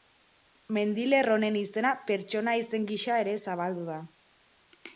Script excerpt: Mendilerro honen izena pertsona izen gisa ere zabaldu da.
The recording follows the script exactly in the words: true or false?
true